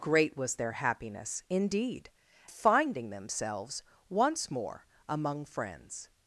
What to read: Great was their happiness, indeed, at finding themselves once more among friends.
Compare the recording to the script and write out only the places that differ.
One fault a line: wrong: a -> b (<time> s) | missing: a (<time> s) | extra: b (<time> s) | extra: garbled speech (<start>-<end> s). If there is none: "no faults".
missing: at (2.1 s)